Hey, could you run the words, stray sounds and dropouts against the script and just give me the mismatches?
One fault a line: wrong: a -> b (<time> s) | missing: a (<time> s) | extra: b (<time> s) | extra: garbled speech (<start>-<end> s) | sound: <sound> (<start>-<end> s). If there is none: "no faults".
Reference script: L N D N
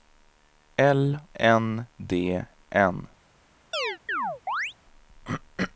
sound: chirp (3.7-4.7 s)